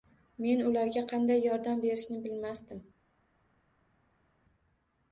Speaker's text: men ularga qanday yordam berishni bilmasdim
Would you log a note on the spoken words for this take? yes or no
no